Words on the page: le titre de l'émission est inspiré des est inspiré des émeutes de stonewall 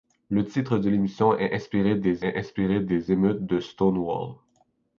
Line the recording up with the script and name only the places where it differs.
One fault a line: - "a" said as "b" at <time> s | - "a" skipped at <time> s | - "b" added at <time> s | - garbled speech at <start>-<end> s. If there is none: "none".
none